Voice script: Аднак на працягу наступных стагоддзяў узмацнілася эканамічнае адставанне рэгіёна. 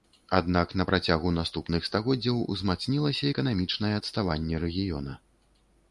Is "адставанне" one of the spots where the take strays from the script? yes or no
no